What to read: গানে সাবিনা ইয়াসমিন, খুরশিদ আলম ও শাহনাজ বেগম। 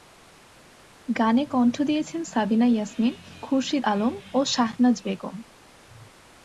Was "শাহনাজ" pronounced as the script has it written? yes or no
yes